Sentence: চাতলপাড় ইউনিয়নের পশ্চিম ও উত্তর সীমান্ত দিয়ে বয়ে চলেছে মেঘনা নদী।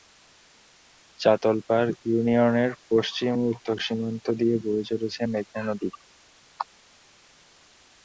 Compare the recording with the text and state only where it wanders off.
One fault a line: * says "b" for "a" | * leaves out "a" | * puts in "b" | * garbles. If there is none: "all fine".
all fine